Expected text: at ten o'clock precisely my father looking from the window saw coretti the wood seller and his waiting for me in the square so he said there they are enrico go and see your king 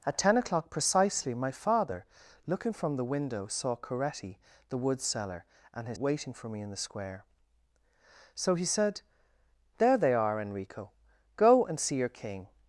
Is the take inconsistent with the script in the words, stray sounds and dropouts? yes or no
no